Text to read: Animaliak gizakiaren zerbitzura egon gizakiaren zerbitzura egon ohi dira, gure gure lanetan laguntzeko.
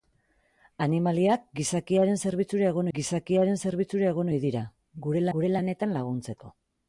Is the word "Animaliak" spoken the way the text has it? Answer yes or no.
yes